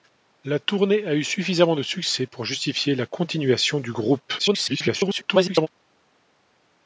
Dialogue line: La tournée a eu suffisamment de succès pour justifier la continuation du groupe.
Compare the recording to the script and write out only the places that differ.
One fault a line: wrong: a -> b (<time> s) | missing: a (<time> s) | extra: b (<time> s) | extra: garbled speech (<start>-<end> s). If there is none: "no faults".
extra: garbled speech (4.4-5.7 s)